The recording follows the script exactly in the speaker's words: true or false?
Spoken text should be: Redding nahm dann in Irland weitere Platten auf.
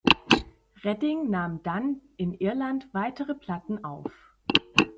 true